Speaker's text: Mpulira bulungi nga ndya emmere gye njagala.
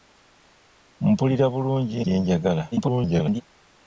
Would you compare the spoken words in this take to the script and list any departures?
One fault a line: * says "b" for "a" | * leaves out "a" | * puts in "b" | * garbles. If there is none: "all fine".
* leaves out "nga ndya emmere"
* garbles